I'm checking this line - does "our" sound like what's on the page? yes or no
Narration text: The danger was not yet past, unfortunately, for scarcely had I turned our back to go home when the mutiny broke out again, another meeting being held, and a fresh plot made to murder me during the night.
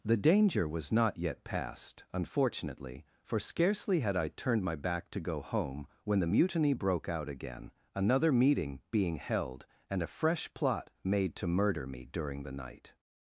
no